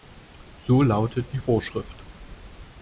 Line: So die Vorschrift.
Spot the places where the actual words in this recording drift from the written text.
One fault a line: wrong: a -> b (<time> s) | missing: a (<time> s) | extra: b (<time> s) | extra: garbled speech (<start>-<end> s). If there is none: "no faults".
extra: lautet (0.8 s)